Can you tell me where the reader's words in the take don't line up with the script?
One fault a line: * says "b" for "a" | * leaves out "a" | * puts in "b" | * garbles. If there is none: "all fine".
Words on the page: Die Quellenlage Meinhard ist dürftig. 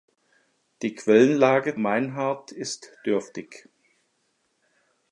all fine